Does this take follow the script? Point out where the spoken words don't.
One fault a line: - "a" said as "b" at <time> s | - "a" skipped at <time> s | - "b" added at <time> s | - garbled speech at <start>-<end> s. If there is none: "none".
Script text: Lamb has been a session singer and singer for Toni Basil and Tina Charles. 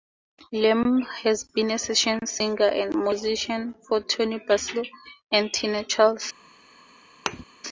- "singer" said as "musician" at 3.0 s